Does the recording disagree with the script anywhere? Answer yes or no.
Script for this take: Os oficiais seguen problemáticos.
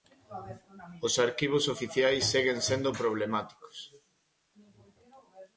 yes